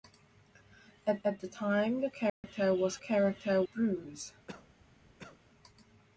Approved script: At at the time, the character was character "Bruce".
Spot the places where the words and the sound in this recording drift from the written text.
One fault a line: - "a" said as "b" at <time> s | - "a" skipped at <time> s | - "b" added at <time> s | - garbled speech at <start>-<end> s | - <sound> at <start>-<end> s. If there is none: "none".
- dropout at 2.3-2.4 s
- cough at 4.5-5.4 s